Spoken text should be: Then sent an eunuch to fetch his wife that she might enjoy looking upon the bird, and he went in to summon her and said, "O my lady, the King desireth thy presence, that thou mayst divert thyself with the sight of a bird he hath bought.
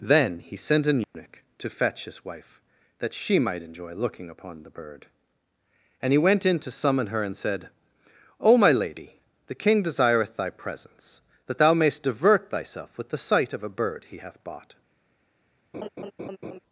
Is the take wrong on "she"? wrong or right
right